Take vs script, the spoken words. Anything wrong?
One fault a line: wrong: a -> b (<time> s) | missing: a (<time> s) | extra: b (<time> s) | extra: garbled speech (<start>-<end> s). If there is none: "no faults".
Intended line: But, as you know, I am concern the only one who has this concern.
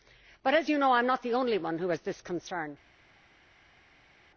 wrong: concern -> not (1.1 s)